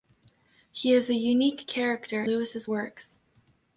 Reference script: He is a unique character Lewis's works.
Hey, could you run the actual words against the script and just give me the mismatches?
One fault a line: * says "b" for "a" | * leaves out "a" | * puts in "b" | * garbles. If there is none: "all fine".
all fine